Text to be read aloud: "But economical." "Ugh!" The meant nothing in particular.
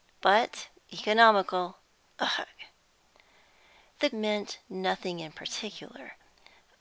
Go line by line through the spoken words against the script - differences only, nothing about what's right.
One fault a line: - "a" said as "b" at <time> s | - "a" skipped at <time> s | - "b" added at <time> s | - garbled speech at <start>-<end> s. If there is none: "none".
none